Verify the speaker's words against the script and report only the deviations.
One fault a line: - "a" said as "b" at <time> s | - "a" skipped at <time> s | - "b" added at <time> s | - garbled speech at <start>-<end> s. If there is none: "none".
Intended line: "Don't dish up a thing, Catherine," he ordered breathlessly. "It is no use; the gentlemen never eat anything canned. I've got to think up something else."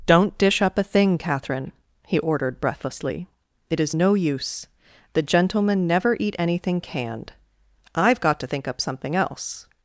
none